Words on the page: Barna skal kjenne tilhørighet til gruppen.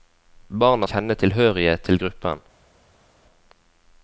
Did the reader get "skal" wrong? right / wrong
wrong